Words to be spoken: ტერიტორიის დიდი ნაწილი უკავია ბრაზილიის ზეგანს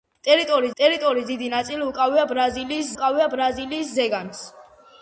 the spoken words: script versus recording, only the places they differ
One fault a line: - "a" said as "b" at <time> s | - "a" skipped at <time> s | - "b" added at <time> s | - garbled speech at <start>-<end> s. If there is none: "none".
- "ტერიტორიის" added at 0.8 s
- "უკავია ბრაზილიის" added at 2.9 s